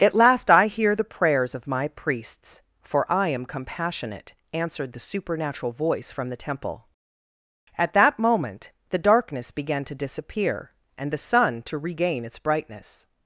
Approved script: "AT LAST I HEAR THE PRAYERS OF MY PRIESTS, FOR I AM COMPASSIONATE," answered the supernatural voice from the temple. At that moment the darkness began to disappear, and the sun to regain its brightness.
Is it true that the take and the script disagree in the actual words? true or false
false